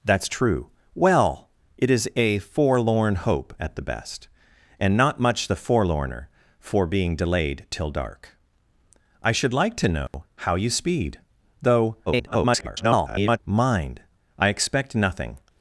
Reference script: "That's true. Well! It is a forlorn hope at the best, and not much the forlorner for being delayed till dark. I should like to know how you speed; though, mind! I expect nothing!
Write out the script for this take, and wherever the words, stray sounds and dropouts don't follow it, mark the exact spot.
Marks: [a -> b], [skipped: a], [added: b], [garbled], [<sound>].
"That's true. Well! It is a forlorn hope at the best, and not much the forlorner for being delayed till dark. I should like to know [dropout] how you speed; though, [garbled] mind! I expect nothing!